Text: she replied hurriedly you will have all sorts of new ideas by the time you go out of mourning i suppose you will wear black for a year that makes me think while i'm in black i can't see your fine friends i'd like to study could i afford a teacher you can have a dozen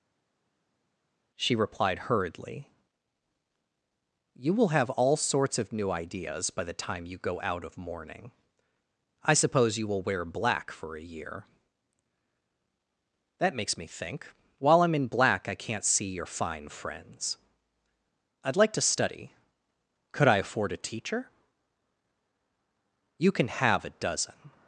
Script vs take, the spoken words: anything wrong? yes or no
no